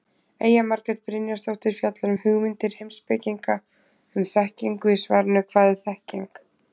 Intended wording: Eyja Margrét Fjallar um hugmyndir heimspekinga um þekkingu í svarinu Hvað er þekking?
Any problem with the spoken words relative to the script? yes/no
yes